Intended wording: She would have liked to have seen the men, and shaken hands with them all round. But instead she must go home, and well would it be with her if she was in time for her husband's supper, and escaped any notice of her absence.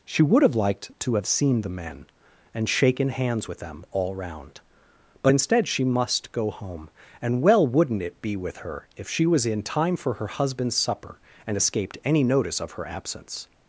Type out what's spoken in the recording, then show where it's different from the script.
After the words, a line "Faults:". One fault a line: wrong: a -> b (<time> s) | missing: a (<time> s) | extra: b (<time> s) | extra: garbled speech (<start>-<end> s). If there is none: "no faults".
She would have liked to have seen the men, and shaken hands with them all round. But instead she must go home, and well wouldn't it be with her if she was in time for her husband's supper, and escaped any notice of her absence.
Faults:
wrong: would -> wouldn't (7.7 s)